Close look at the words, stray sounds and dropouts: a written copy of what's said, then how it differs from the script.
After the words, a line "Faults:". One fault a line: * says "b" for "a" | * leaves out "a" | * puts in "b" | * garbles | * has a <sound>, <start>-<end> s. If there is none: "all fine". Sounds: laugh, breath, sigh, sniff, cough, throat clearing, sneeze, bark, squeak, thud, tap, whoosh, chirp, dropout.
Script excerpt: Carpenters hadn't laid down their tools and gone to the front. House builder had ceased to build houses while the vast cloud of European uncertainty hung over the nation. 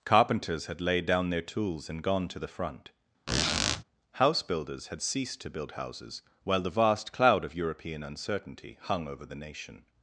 Carpenters had laid down their tools and gone to the front. House builders had ceased to build houses while the vast cloud of European uncertainty hung over the nation.
Faults:
* says "had" for "hadn't"
* has a squeak, 3.3-3.8 s
* says "builders" for "builder"